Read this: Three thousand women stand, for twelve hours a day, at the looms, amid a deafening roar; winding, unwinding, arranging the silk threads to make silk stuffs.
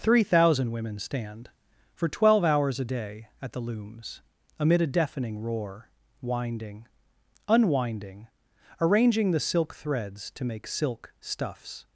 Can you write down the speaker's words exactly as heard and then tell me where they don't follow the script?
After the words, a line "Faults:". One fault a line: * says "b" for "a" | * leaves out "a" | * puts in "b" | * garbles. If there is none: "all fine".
Three thousand women stand, for twelve hours a day, at the looms, amid a deafening roar; winding, unwinding, arranging the silk threads to make silk stuffs.
Faults:
all fine